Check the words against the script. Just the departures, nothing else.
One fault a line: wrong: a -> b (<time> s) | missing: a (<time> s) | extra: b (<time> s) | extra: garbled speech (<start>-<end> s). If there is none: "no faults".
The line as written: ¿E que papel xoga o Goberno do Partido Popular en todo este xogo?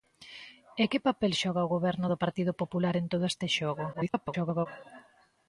extra: garbled speech (3.9-4.7 s)